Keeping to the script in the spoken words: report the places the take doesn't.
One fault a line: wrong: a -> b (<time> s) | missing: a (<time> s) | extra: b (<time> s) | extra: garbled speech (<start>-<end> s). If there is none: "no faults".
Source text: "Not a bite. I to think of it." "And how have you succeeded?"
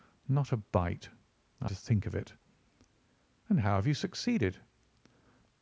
no faults